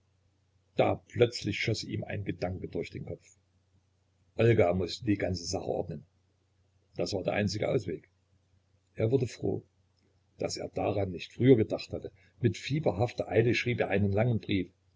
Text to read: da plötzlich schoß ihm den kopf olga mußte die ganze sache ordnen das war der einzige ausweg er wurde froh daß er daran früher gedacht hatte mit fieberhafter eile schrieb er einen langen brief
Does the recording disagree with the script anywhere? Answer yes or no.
yes